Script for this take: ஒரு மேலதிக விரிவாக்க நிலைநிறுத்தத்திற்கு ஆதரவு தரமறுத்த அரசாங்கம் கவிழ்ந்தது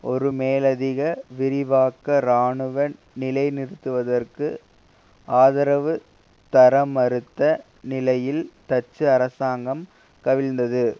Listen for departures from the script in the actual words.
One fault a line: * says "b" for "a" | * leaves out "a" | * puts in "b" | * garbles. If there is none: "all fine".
* puts in "இராணுவ"
* puts in "நிலையில் டச்சு"